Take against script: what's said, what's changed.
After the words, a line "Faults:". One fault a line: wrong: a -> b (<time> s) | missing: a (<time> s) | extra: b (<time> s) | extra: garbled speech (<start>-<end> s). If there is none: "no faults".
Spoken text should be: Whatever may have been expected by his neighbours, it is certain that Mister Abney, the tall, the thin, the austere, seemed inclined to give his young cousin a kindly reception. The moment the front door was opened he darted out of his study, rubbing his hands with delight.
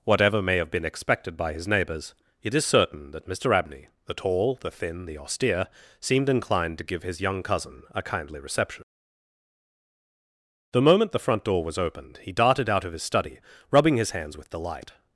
Whatever may have been expected by his neighbours, it is certain that Mister Abney, the tall, the thin, the austere, seemed inclined to give his young cousin a kindly reception. The moment the front door was opened he darted out of his study, rubbing his hands with delight.
Faults:
no faults